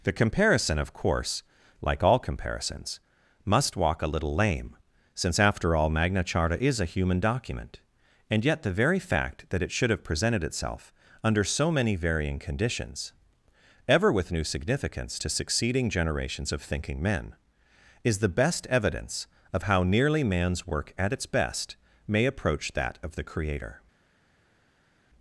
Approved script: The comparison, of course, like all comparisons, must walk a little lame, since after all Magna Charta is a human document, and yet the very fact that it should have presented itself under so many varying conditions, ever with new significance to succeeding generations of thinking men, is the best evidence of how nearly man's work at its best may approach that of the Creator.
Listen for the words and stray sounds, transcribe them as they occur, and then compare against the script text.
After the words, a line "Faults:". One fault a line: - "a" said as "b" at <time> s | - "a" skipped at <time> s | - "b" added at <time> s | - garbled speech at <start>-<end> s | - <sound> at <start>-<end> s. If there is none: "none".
The comparison, of course, like all comparisons, must walk a little lame, since after all Magna Charta is a human document, and yet the very fact that it should have presented itself under so many varying conditions, ever with new significance to succeeding generations of thinking men, is the best evidence of how nearly man's work at its best may approach that of the Creator.
Faults:
none